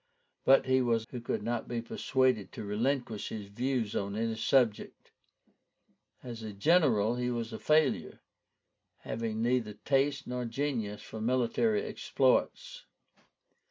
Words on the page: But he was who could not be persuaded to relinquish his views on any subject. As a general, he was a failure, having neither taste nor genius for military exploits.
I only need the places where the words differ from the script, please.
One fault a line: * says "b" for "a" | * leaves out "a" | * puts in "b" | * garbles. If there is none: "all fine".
all fine